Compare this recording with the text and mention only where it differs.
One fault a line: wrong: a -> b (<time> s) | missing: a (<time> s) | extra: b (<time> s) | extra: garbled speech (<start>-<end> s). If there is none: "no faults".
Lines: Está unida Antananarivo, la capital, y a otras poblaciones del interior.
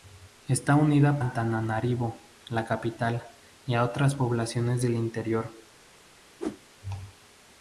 no faults